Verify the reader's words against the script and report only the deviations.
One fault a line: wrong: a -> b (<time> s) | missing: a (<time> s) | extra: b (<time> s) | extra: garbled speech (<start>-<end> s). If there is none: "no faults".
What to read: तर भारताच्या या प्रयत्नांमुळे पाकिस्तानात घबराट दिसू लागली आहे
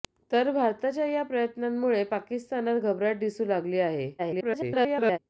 extra: garbled speech (4.2-5.2 s)